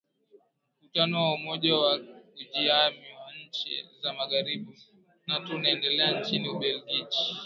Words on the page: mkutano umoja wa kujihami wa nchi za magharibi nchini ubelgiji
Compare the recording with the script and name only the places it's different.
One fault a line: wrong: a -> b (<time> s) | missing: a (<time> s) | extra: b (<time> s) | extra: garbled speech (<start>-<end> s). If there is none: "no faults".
extra: wa (1.2 s)
extra: nato unaendelea (5.3 s)